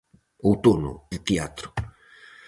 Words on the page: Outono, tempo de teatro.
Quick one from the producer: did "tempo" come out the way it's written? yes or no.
no